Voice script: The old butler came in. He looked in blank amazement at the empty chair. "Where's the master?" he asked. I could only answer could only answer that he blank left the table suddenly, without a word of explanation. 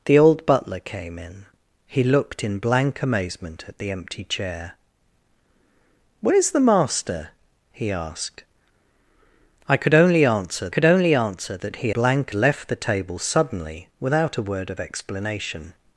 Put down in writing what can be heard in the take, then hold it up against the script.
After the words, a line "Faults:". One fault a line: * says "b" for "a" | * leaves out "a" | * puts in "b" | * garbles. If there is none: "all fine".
The old butler came in. He looked in blank amazement at the empty chair. "Where's the master?" he asked. I could only answer could only answer that he blank left the table suddenly, without a word of explanation.
Faults:
all fine